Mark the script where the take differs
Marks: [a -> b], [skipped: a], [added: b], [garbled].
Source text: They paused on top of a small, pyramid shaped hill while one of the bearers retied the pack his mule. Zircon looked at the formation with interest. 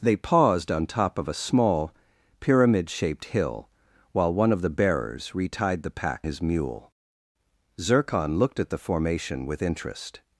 They paused on top of a small, pyramid shaped hill while one of the bearers retied the pack his mule. Zircon looked at the formation with interest.